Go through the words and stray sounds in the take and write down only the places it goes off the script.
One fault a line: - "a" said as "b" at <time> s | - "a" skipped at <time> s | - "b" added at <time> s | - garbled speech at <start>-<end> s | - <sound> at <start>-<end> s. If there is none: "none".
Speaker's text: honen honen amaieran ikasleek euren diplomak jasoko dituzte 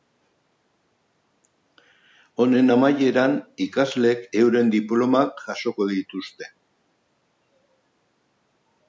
- "honen" skipped at 2.7 s